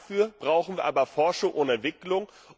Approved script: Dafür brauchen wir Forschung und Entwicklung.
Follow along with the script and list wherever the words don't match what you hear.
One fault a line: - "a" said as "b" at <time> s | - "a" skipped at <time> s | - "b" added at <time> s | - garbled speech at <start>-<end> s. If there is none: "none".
- "aber" added at 0.8 s